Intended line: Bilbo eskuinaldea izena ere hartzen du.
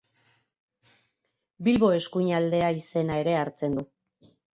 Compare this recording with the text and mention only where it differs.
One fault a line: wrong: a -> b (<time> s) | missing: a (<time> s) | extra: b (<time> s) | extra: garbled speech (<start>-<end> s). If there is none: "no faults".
no faults